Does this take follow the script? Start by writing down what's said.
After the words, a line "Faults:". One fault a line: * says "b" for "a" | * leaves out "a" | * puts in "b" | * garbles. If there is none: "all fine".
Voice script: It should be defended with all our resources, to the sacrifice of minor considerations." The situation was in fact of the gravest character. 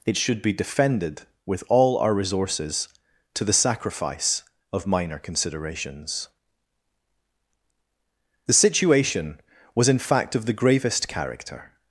It should be defended with all our resources, to the sacrifice of minor considerations." The situation was in fact of the gravest character.
Faults:
all fine